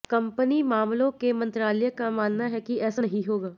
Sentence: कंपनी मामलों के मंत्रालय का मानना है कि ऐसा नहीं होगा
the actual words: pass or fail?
pass